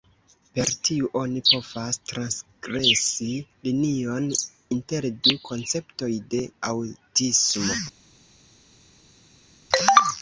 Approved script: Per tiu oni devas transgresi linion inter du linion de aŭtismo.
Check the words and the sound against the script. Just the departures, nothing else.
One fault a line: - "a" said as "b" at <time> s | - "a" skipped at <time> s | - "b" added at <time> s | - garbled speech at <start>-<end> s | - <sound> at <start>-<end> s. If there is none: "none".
- "devas" said as "povas" at 1.5 s
- "linion" said as "konceptoj" at 5.5 s